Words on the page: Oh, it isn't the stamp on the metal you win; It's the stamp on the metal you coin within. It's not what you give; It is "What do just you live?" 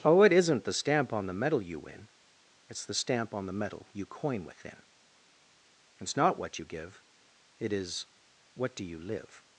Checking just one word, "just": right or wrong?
wrong